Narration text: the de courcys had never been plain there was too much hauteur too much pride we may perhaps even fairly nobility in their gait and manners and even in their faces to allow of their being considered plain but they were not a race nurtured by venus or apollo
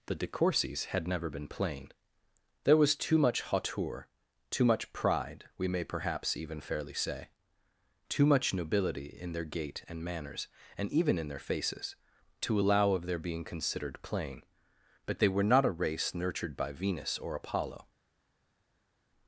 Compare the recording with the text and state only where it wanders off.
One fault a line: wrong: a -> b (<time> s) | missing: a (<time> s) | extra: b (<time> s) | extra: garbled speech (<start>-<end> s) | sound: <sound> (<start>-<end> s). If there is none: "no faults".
extra: say too much (6.9 s)